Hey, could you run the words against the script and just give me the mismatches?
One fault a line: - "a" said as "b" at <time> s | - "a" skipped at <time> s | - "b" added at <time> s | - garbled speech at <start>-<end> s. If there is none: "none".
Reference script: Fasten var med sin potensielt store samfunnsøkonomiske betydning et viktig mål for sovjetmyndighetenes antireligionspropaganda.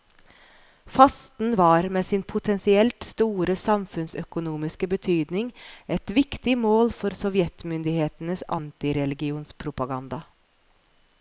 none